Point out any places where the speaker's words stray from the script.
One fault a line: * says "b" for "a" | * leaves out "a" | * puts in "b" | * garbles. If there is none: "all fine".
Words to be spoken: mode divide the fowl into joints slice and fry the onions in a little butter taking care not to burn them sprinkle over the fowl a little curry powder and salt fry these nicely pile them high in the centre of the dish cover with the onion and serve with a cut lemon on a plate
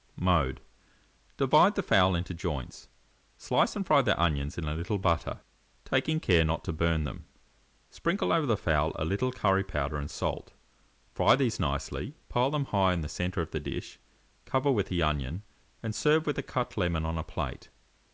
all fine